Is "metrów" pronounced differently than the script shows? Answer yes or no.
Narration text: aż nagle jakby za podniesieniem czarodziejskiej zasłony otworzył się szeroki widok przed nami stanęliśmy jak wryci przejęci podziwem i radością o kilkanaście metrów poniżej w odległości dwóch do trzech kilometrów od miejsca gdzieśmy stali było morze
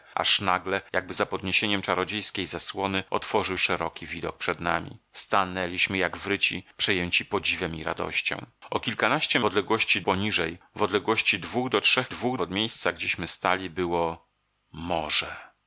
yes